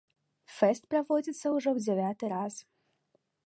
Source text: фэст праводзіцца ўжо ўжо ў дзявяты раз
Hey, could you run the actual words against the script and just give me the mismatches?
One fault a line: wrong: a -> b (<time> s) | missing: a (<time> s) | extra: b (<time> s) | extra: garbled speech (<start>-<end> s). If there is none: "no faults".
missing: ўжо (1.7 s)